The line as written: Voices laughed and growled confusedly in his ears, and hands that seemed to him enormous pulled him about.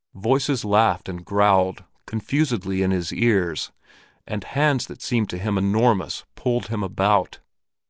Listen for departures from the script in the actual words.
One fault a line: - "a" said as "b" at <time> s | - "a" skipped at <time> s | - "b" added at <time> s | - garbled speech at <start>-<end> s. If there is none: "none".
none